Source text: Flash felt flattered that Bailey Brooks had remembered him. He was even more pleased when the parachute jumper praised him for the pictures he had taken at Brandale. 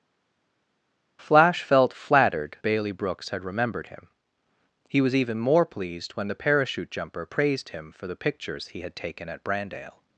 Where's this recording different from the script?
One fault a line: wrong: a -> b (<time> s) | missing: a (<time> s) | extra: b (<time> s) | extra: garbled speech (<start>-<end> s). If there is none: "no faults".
missing: that (2.6 s)